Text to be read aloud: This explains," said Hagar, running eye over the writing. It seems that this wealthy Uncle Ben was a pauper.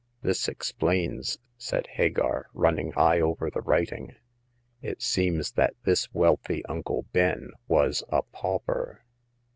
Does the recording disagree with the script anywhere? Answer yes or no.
no